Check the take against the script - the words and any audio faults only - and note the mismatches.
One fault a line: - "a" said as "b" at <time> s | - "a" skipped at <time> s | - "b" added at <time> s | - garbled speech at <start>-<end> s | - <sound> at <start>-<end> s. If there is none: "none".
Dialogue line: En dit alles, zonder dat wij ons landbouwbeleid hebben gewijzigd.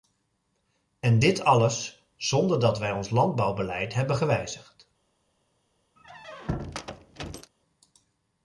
- squeak at 6.0-7.5 s